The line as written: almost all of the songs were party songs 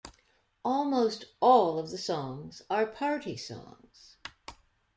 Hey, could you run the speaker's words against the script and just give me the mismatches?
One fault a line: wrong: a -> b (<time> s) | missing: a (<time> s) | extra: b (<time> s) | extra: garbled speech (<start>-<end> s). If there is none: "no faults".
wrong: were -> are (2.7 s)